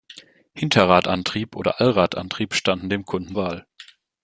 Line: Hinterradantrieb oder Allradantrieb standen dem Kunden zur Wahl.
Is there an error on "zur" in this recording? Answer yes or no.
yes